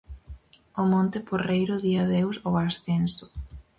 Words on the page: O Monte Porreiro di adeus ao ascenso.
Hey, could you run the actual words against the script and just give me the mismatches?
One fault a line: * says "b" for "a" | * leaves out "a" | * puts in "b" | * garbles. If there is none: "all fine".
all fine